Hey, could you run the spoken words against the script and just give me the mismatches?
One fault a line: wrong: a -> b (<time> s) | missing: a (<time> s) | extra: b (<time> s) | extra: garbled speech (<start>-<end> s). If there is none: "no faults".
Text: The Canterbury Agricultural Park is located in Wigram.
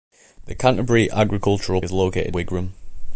missing: Park (1.8 s)
missing: in (2.3 s)